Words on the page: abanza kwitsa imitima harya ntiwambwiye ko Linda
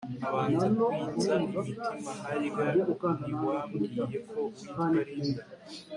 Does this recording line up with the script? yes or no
no